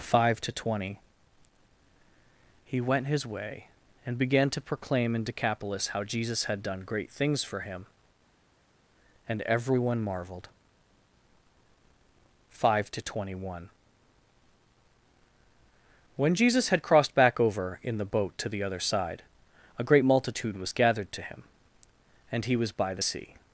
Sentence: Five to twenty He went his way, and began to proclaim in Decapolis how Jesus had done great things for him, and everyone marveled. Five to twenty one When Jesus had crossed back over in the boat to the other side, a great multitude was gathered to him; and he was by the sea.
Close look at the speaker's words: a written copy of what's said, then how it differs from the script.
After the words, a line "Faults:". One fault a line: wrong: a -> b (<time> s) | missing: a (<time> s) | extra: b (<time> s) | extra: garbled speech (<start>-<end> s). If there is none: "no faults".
Five to twenty He went his way, and began to proclaim in Decapolis how Jesus had done great things for him, and everyone marveled. Five to twenty one When Jesus had crossed back over in the boat to the other side, a great multitude was gathered to him; and he was by the sea.
Faults:
no faults